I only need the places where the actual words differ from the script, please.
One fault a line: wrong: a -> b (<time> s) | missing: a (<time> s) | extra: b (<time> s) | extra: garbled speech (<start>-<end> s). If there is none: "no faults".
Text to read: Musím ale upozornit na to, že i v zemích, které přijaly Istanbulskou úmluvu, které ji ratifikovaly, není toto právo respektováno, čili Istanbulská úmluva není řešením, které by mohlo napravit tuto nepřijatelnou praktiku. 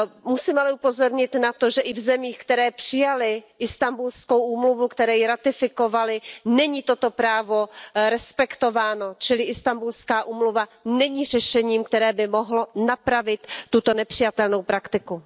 no faults